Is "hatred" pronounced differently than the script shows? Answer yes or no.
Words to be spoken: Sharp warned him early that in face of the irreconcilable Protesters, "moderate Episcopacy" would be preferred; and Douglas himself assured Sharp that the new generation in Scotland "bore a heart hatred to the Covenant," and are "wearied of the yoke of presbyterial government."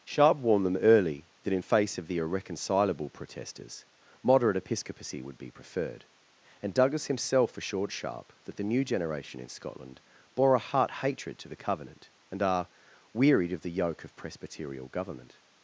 no